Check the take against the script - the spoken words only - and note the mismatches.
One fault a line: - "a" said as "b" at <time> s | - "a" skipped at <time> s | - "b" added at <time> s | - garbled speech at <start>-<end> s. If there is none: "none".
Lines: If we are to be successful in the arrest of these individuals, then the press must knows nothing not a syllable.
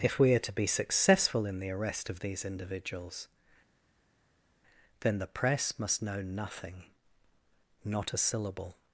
- "knows" said as "know" at 6.0 s